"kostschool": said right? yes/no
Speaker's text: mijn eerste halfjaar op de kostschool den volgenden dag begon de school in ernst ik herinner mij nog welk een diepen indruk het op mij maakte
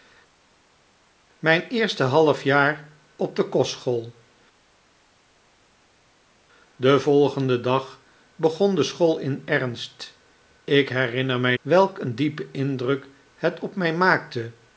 yes